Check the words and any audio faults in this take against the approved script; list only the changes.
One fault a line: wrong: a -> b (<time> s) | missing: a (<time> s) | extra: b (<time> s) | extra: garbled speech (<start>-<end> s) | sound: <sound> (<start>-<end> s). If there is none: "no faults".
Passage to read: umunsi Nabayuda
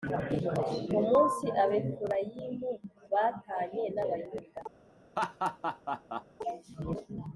extra: Abefurayimu batanye (1.6 s)
sound: laugh (5.2-6.2 s)